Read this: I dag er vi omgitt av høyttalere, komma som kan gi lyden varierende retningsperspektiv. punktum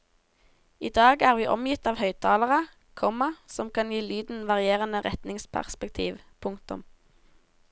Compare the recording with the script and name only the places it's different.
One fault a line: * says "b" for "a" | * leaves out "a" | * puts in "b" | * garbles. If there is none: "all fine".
all fine